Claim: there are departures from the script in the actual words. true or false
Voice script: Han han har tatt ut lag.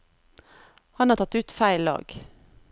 true